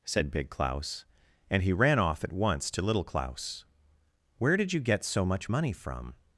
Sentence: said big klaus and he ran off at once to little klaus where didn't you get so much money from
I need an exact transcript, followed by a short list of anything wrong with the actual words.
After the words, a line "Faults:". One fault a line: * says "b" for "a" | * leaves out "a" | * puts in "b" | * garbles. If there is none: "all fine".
said big klaus and he ran off at once to little klaus where did you get so much money from
Faults:
* says "did" for "didn't"